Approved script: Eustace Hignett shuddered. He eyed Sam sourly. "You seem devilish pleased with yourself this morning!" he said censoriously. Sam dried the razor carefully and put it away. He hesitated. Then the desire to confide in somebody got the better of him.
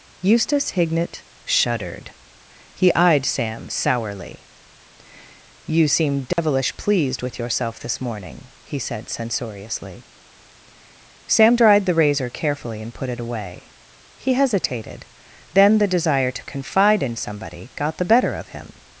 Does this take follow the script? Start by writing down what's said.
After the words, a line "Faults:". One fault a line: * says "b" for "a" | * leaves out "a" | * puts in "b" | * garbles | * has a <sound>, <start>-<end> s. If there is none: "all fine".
Eustace Hignett shuddered. He eyed Sam sourly. "You seem devilish pleased with yourself this morning!" he said censoriously. Sam dried the razor carefully and put it away. He hesitated. Then the desire to confide in somebody got the better of him.
Faults:
* has a dropout, 6.3-6.4 s